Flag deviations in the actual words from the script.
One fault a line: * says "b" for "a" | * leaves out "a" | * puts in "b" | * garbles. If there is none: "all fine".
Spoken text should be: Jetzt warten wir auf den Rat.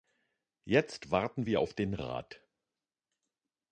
all fine